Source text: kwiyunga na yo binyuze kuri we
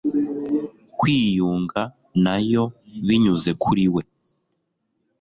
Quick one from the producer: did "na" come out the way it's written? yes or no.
yes